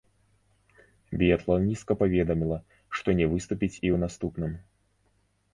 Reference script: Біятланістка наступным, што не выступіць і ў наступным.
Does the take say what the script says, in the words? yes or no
no